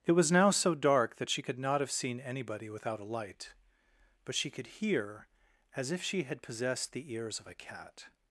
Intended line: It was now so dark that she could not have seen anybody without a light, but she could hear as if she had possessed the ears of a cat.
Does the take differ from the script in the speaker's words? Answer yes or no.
no